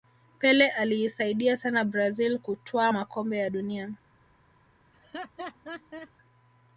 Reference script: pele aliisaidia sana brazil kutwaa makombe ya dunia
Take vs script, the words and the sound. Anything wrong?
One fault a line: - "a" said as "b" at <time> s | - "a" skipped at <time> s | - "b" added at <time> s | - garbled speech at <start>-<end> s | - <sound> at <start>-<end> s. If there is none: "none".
- laugh at 4.9-6.1 s